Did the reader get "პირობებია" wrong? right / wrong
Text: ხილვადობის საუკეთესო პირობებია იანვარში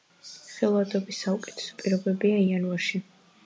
right